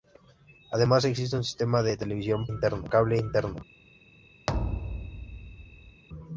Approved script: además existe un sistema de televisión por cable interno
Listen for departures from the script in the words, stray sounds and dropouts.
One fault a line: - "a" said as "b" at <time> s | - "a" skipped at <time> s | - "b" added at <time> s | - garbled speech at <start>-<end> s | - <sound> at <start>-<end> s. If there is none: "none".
- "por" said as "interno" at 2.5 s
- thud at 4.5-6.0 s